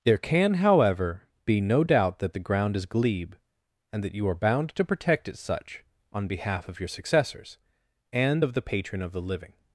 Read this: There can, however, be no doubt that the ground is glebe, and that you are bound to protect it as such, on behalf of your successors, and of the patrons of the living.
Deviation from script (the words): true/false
true